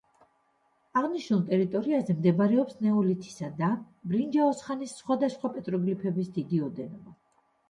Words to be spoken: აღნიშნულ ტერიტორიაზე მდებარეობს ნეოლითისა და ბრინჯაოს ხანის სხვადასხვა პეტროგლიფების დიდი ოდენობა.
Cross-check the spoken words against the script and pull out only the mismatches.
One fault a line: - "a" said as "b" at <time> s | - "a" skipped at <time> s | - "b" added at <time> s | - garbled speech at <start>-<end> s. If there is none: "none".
none